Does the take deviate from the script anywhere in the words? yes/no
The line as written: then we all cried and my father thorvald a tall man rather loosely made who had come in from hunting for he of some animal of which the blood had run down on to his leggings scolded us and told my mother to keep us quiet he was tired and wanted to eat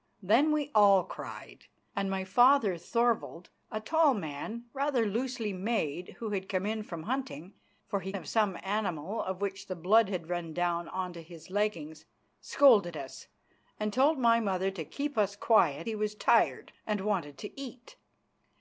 no